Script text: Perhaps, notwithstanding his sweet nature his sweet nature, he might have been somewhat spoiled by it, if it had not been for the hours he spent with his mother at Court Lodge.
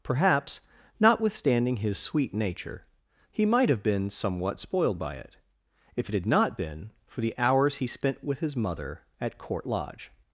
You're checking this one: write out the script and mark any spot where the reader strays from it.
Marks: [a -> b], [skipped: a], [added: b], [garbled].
Perhaps, notwithstanding his sweet nature [skipped: his sweet nature,] he might have been somewhat spoiled by it, if it had not been for the hours he spent with his mother at Court Lodge.